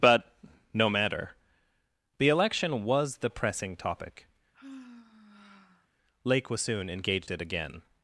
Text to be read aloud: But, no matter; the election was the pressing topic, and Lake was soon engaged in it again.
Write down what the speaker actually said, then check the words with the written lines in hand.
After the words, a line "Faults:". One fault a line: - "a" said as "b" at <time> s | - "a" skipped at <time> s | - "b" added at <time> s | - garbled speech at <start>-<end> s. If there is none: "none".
But, no matter; the election was the pressing topic, Lake was soon engaged it again.
Faults:
- "and" skipped at 4.3 s
- "in" skipped at 7.3 s